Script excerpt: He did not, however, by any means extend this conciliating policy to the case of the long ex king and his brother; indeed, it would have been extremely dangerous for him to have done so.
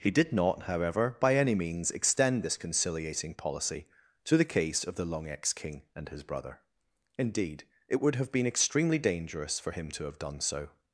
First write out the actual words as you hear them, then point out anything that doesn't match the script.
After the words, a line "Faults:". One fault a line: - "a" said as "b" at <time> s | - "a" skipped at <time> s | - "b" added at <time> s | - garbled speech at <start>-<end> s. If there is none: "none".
He did not, however, by any means extend this conciliating policy to the case of the long ex king and his brother; indeed, it would have been extremely dangerous for him to have done so.
Faults:
none